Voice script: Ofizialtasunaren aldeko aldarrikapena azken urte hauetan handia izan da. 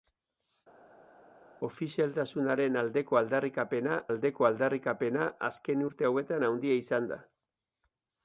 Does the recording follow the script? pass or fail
fail